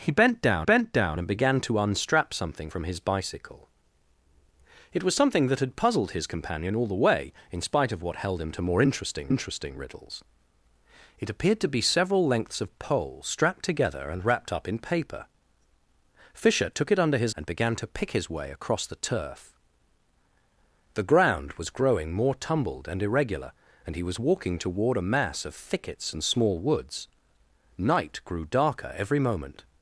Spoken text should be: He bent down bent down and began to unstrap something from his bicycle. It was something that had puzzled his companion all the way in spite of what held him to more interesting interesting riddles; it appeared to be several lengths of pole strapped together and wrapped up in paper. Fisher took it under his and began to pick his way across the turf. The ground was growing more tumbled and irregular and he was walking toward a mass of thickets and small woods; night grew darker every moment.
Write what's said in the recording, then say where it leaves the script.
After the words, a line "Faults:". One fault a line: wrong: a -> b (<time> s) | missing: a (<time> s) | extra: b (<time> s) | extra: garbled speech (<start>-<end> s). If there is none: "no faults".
He bent down bent down and began to unstrap something from his bicycle. It was something that had puzzled his companion all the way in spite of what held him to more interesting interesting riddles; it appeared to be several lengths of pole strapped together and wrapped up in paper. Fisher took it under his and began to pick his way across the turf. The ground was growing more tumbled and irregular and he was walking toward a mass of thickets and small woods; night grew darker every moment.
Faults:
no faults